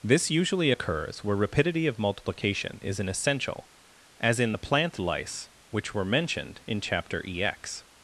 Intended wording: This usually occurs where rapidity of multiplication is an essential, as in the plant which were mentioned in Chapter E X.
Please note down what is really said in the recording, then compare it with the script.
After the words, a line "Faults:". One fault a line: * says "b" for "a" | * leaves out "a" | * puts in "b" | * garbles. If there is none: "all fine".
This usually occurs where rapidity of multiplication is an essential, as in the plant lice which were mentioned in Chapter E X.
Faults:
* puts in "lice"